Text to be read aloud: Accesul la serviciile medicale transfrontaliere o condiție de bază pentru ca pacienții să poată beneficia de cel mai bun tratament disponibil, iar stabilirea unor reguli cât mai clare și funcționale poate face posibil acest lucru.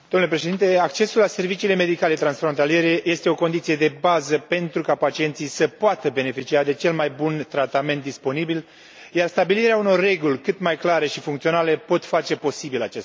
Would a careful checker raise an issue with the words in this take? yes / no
yes